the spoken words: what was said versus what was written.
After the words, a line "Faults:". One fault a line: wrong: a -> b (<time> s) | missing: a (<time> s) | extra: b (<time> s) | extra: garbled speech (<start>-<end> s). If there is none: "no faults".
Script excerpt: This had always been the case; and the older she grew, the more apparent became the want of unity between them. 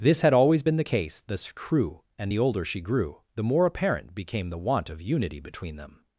This had always been the case; this crew and the older she grew, the more apparent became the want of unity between them.
Faults:
extra: this crew (1.3 s)